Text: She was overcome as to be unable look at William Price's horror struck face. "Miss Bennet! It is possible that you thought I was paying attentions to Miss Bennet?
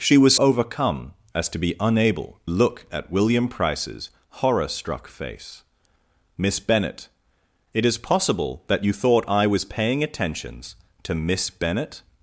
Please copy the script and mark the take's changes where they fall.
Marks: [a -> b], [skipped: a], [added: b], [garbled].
She was overcome as to be unable look at William Price's horror struck face. "Miss Bennet! It is possible that you thought I was paying attentions to Miss Bennet?